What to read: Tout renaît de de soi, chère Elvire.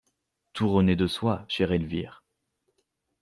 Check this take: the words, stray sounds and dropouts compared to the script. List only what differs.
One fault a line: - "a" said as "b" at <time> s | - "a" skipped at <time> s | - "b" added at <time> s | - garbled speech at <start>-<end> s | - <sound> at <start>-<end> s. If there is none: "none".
- "de" skipped at 1.1 s